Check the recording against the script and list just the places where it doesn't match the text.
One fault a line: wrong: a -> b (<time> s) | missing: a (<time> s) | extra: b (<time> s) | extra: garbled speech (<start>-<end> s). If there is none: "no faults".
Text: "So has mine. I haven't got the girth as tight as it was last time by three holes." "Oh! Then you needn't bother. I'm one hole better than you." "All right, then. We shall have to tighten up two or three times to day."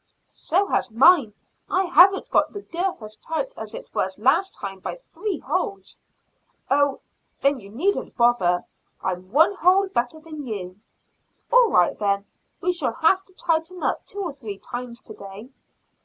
no faults